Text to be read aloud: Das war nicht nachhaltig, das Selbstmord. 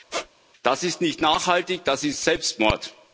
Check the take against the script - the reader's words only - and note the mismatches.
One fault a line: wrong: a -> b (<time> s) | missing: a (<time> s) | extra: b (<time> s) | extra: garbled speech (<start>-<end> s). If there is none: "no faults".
wrong: war -> ist (0.8 s)
extra: ist (2.0 s)